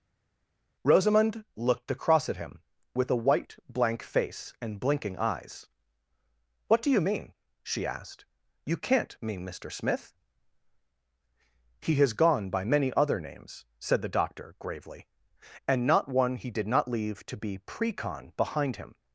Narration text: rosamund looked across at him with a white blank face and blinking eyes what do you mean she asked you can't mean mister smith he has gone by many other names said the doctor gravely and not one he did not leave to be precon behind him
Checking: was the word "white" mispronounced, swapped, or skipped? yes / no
no